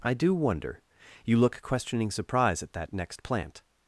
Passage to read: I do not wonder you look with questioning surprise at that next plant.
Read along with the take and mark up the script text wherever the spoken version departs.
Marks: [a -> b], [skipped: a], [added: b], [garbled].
I do [skipped: not] wonder you look [skipped: with] questioning surprise at that next plant.